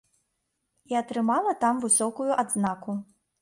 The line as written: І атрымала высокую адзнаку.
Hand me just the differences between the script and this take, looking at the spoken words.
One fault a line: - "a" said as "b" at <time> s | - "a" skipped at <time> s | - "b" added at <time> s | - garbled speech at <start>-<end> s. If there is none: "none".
- "там" added at 1.7 s